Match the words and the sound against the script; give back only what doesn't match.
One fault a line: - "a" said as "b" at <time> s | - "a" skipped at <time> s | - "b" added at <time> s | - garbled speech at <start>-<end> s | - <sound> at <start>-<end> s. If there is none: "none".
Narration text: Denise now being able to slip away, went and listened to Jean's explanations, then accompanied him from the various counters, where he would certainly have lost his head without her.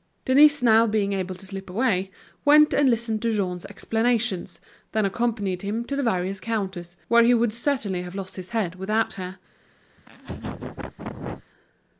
- "from" said as "to" at 5.8 s
- laugh at 10.0-11.5 s